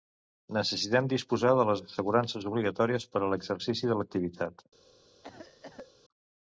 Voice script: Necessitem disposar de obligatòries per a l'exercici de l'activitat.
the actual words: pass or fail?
fail